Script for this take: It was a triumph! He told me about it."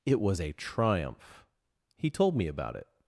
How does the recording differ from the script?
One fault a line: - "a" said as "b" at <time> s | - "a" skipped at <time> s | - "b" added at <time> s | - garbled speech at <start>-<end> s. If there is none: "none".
none